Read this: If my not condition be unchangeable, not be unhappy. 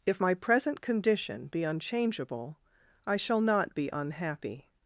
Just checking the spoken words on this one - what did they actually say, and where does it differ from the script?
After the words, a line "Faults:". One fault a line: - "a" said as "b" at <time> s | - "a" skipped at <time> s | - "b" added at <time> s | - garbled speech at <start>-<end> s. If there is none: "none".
If my present condition be unchangeable, I shall not be unhappy.
Faults:
- "not" said as "present" at 0.3 s
- "I shall" added at 3.1 s